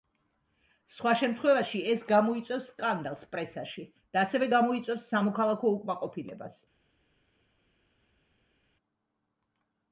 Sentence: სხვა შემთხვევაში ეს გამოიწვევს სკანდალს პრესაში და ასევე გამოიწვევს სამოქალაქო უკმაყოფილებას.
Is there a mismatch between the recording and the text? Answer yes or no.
no